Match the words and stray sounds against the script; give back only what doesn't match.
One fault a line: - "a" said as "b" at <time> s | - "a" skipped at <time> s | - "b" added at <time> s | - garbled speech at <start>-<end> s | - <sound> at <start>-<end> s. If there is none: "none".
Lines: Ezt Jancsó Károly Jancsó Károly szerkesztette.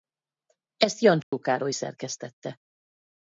- dropout at 1.2-1.3 s
- "Jancsó Károly" skipped at 1.7 s